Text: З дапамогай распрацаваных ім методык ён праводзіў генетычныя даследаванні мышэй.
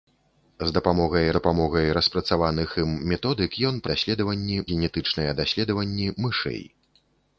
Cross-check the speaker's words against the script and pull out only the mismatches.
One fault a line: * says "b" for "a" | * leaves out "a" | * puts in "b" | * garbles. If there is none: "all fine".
* puts in "дапамогай"
* says "даследаванні" for "праводзіў"